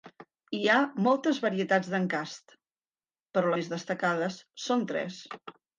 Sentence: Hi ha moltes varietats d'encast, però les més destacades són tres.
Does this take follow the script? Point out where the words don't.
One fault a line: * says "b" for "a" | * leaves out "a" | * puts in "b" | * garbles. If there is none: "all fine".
* leaves out "les"